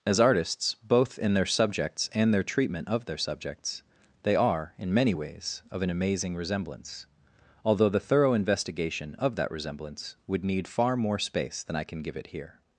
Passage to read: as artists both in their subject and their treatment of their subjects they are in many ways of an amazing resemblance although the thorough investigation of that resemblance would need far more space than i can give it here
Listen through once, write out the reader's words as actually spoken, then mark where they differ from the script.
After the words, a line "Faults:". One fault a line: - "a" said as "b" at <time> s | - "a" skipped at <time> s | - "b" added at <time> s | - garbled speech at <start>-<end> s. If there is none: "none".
as artists both in their subjects and their treatment of their subjects they are in many ways of an amazing resemblance although the thorough investigation of that resemblance would need far more space than i can give it here
Faults:
- "subject" said as "subjects" at 1.4 s